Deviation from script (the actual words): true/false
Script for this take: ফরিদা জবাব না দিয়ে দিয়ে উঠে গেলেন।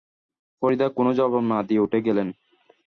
true